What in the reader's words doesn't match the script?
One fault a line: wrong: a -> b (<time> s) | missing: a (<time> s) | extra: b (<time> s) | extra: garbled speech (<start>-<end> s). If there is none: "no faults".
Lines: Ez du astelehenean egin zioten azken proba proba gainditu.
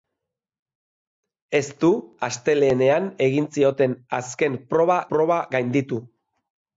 no faults